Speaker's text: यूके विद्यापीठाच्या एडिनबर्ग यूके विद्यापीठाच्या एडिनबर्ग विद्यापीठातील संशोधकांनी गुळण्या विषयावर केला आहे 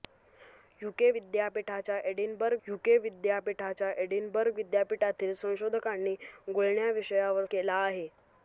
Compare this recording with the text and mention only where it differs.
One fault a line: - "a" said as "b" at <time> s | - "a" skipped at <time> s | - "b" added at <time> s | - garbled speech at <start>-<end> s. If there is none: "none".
none